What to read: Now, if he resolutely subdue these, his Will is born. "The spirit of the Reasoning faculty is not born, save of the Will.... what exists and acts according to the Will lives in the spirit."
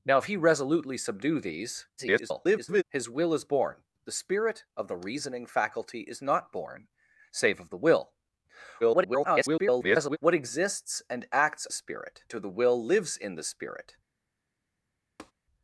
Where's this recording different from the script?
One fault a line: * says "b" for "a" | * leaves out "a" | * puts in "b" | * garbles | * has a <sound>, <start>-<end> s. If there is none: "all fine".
* garbles
* garbles
* says "spirit" for "according"
* has a tap, 15.2-15.3 s